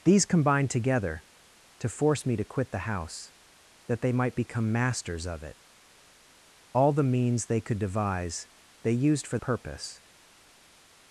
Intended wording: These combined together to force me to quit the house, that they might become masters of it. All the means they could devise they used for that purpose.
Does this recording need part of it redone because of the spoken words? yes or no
yes